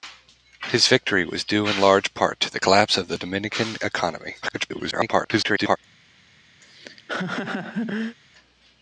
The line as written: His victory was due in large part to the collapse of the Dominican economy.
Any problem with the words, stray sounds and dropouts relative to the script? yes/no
yes